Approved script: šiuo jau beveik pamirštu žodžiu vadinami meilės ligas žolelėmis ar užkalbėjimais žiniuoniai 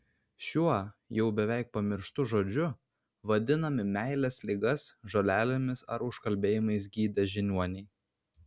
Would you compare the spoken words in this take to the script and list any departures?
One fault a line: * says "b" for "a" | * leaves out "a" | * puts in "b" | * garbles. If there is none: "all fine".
* puts in "gydę"